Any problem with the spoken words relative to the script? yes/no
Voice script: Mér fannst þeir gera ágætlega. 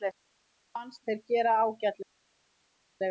no